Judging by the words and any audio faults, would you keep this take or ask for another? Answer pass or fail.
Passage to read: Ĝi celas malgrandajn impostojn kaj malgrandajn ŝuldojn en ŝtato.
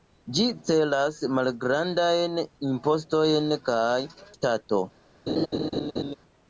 fail